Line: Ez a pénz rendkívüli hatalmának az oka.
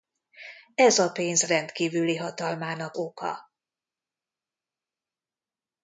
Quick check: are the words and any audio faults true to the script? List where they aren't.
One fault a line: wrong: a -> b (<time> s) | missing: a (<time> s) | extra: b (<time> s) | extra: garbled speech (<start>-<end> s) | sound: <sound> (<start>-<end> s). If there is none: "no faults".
missing: az (3.0 s)